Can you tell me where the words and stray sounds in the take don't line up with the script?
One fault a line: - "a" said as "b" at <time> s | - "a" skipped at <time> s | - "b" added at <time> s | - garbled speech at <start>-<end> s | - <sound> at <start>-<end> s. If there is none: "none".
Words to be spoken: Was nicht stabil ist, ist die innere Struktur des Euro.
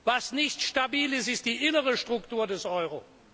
none